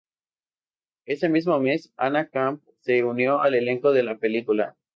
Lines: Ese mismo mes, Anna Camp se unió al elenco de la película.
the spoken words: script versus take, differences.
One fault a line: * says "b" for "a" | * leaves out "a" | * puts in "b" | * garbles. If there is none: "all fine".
all fine